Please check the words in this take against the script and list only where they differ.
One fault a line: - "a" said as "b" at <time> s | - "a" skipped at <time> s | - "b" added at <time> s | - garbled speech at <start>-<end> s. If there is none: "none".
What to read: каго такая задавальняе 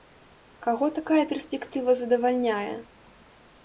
- "перспектыва" added at 1.3 s